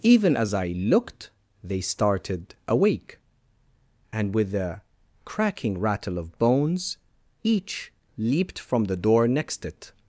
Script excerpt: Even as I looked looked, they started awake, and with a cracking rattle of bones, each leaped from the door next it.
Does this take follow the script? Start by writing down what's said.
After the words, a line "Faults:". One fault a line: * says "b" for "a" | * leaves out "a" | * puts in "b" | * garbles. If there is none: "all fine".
Even as I looked, they started awake, and with a cracking rattle of bones, each leaped from the door next it.
Faults:
* leaves out "looked"